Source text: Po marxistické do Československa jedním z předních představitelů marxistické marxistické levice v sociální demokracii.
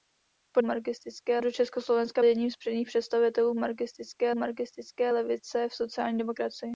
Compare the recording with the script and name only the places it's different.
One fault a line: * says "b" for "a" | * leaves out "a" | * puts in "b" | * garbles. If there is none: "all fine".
all fine